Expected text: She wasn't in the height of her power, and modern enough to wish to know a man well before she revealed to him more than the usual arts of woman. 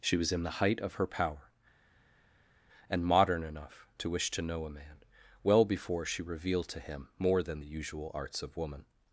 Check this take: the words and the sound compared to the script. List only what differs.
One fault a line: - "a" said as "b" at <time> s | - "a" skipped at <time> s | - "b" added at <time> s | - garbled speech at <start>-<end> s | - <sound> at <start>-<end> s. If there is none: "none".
- "wasn't" said as "was" at 0.2 s